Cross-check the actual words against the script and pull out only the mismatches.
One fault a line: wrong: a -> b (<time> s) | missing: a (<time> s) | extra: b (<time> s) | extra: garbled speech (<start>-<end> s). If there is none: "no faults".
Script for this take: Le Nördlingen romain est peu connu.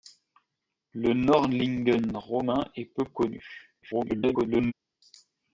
extra: garbled speech (3.8-4.7 s)